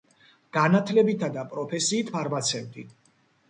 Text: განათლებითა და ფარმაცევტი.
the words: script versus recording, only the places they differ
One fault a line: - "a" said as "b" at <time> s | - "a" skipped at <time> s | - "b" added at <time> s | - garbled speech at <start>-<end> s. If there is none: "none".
- "პროფესიით" added at 1.5 s